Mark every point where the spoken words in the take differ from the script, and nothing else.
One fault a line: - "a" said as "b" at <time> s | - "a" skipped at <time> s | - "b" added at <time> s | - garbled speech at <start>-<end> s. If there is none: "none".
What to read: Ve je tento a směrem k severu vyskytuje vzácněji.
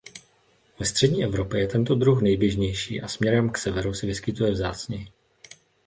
- "střední Evropě" added at 0.8 s
- "druh nejběžnější" added at 1.9 s
- "se" added at 3.9 s